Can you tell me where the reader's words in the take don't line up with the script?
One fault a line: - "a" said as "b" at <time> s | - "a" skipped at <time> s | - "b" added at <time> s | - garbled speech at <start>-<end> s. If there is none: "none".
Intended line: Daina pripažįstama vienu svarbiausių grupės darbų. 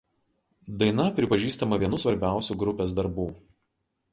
none